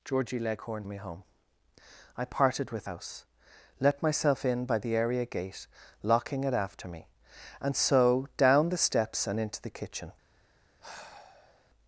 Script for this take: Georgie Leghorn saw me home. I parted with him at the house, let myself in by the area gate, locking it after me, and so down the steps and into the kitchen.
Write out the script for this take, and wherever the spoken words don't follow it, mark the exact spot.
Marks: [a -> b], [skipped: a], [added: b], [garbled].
Georgie Leghorn [skipped: saw] me home. I parted with [skipped: him at the] house, let myself in by the area gate, locking it after me, and so down the steps and into the kitchen.